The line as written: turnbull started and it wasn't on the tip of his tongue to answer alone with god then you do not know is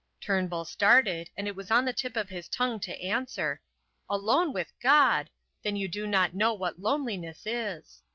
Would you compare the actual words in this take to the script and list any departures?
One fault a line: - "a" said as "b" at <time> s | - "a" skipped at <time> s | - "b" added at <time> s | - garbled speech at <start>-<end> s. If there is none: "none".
- "wasn't" said as "was" at 1.6 s
- "what loneliness" added at 6.5 s